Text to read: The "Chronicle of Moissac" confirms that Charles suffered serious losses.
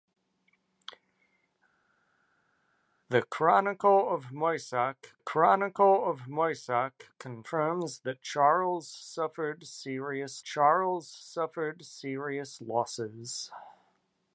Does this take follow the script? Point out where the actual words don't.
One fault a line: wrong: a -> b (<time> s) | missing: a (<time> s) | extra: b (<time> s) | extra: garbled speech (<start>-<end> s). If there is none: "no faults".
extra: chronicle of Moissac (5.2 s)
extra: Charles suffered serious (10.4 s)